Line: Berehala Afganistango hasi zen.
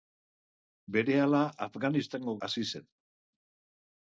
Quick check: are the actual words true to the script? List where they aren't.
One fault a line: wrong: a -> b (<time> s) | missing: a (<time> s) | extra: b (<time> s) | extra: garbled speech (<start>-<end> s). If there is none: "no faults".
no faults